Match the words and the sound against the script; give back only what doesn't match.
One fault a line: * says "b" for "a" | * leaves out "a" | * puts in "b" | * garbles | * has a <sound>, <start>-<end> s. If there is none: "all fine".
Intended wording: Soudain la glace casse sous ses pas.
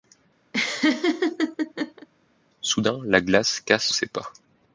* has a laugh, 0.5-2.1 s
* leaves out "sous"